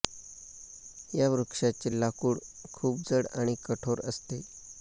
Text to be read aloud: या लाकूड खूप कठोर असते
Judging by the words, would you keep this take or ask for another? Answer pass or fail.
fail